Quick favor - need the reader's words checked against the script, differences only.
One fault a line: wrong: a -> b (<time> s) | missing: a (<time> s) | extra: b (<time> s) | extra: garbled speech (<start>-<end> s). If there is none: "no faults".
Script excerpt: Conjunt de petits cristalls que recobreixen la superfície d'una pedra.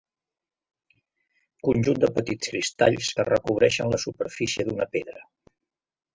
no faults